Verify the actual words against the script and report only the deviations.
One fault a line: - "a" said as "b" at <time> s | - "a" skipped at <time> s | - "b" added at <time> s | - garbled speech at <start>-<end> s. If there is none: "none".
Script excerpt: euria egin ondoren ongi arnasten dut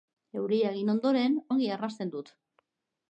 none